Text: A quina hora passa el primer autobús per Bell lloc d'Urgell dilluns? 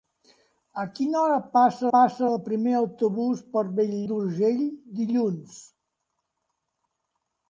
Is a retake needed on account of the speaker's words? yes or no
yes